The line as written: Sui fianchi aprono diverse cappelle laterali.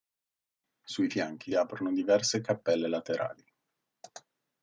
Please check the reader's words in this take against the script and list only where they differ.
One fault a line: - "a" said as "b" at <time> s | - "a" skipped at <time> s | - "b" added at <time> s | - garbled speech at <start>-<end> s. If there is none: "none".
none